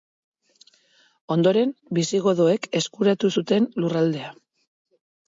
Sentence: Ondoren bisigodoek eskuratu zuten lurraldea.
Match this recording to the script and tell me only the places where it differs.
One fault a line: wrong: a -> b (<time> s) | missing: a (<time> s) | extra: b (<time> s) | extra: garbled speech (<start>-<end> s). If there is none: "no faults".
no faults